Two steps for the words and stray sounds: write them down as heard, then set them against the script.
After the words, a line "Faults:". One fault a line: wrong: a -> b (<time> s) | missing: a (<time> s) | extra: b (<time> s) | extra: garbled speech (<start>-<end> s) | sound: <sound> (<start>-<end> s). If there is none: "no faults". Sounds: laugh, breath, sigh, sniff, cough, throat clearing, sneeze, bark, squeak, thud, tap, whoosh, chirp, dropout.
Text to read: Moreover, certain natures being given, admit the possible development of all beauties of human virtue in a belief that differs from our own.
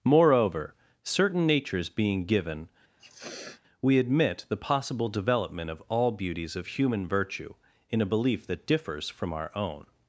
Moreover, certain natures being given, we admit the possible development of all beauties of human virtue in a belief that differs from our own.
Faults:
sound: sniff (3.0-3.6 s)
extra: we (3.8 s)